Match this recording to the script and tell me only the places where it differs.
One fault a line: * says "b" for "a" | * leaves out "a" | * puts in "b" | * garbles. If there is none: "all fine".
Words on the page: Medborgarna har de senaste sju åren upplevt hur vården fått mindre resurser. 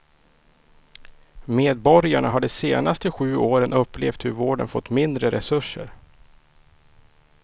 all fine